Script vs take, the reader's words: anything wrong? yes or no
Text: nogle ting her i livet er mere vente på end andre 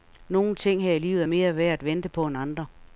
yes